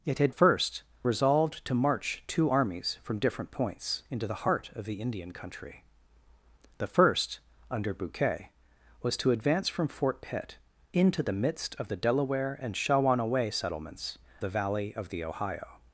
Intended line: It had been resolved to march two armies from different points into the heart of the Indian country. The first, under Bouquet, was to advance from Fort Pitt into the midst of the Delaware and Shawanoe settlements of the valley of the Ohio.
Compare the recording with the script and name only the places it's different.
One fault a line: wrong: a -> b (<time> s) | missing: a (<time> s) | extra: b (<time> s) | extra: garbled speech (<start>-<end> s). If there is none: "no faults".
wrong: been -> first (0.3 s)
missing: of (14.2 s)